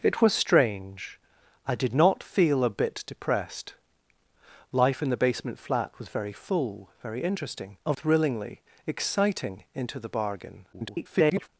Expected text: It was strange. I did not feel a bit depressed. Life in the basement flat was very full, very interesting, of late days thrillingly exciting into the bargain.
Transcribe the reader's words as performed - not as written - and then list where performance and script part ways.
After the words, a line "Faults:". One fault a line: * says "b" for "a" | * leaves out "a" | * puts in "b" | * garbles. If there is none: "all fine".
It was strange. I did not feel a bit depressed. Life in the basement flat was very full, very interesting, of thrillingly exciting into the bargain. [garbled]
Faults:
* leaves out "late days"
* garbles